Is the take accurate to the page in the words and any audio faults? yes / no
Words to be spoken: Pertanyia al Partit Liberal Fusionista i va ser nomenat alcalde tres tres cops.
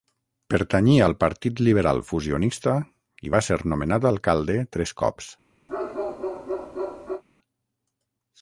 no